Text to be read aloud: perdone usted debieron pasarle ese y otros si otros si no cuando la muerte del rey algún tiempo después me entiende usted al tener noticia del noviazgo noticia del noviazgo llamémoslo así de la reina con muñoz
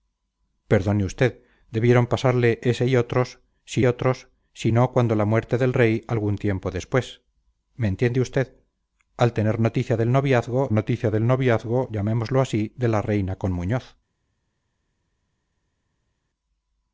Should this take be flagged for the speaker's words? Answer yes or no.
no